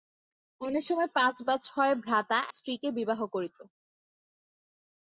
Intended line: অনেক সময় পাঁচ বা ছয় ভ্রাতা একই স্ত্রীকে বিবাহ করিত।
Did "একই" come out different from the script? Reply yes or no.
yes